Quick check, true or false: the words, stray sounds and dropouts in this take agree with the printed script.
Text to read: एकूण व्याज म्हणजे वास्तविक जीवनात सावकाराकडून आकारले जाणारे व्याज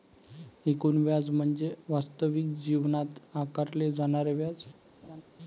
false